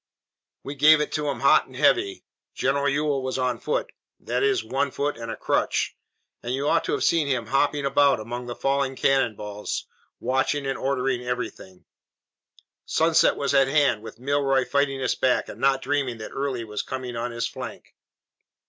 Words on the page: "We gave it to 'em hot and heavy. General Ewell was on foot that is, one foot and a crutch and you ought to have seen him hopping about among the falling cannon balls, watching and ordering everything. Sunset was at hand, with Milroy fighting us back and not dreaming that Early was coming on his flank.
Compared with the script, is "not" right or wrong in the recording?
right